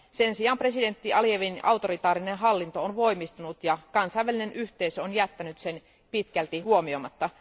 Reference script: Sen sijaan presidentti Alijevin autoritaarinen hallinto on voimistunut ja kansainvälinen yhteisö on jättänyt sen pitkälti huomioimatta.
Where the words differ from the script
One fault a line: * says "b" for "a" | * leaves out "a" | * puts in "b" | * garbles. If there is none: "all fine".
all fine